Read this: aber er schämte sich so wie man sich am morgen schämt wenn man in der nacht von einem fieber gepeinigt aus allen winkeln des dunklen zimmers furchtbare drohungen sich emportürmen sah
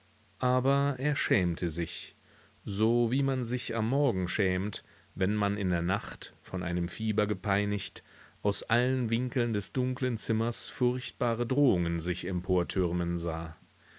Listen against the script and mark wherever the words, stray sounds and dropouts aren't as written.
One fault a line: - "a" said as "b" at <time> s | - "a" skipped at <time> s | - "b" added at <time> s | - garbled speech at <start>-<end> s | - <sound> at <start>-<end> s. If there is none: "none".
none